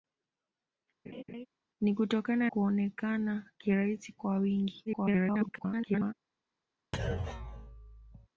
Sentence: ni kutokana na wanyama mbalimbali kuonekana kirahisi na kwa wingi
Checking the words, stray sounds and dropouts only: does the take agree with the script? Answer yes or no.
no